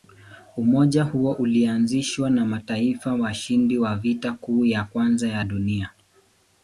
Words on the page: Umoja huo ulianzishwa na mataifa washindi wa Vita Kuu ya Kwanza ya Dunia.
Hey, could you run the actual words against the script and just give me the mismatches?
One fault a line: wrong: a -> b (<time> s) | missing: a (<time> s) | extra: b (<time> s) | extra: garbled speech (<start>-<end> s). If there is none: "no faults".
no faults